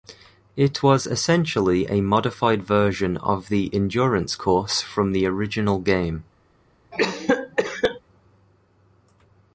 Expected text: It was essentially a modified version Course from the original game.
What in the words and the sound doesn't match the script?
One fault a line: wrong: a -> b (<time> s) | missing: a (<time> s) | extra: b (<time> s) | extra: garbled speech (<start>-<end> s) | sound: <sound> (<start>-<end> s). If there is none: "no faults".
extra: of the Endurance (3.2 s)
sound: cough (6.9-8.0 s)